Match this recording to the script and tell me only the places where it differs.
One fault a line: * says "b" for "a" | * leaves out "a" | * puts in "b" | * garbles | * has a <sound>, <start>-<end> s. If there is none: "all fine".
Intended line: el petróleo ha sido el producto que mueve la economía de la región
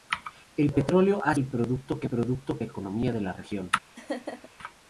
* leaves out "sido"
* says "producto" for "mueve"
* has a laugh, 3.9-4.5 s